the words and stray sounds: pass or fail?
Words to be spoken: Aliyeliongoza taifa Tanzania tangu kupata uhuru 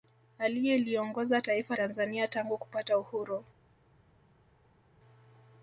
pass